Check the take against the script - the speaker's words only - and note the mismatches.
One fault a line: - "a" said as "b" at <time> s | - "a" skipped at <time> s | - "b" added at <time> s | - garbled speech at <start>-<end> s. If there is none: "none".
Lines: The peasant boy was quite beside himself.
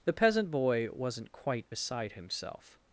- "was" said as "wasn't" at 0.9 s